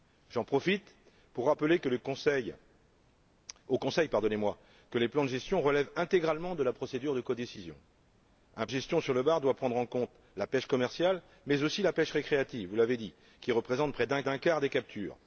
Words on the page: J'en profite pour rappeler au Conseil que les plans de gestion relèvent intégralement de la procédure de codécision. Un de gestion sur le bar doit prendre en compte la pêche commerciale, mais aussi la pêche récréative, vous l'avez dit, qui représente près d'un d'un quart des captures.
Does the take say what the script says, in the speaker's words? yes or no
yes